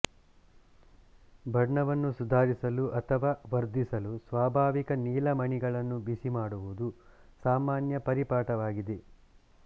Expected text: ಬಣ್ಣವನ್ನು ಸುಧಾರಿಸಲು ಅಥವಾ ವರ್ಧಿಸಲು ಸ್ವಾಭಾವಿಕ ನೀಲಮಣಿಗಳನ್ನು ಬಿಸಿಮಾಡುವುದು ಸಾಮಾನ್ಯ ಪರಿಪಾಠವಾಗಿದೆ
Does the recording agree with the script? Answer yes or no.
yes